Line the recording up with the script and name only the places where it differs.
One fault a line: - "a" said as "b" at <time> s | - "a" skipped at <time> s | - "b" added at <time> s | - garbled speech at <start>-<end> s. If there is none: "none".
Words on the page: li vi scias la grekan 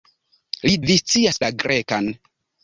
none